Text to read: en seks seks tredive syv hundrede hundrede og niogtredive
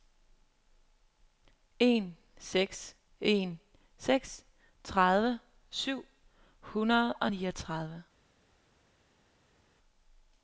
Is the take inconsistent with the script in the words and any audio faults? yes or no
yes